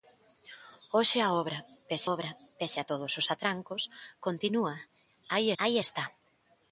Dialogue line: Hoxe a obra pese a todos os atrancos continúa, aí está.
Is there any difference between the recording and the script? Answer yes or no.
yes